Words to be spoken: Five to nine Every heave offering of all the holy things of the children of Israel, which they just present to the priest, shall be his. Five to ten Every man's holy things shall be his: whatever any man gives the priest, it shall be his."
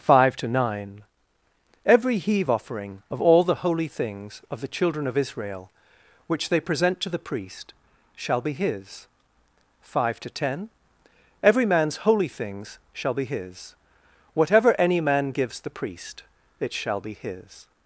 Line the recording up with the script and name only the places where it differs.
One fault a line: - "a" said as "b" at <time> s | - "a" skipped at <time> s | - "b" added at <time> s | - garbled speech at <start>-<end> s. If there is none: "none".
- "just" skipped at 6.6 s